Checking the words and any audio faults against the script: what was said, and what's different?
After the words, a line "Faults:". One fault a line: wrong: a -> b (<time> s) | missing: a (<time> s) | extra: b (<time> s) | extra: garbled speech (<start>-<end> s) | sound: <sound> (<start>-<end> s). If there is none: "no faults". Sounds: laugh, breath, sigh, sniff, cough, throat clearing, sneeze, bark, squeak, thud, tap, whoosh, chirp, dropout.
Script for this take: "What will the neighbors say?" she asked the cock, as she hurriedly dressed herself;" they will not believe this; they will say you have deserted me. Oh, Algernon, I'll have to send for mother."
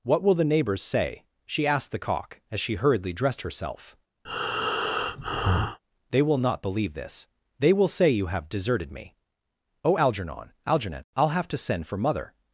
"What will the neighbors say?" she asked the cock, as she hurriedly dressed herself;" they will not believe this; they will say you have deserted me. Oh, Algernon Algernon, I'll have to send for mother."
Faults:
sound: breath (4.2-5.8 s)
extra: Algernon (10.7 s)